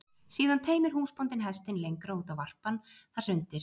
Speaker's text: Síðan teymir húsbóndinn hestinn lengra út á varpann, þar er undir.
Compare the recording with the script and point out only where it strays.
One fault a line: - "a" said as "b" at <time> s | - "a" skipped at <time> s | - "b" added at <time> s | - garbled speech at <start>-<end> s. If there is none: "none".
none